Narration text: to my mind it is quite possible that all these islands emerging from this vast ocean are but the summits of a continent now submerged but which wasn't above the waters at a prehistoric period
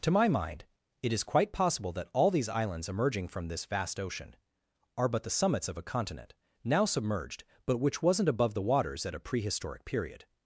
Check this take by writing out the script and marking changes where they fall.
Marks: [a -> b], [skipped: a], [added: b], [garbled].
to my mind it is quite possible that all these islands emerging from this vast ocean are but the summits of a continent now submerged but which wasn't above the waters at a prehistoric period